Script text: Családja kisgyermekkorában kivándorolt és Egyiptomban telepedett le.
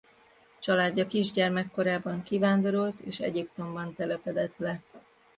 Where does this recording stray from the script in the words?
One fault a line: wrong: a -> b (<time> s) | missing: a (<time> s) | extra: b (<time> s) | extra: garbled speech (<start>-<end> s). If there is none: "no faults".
no faults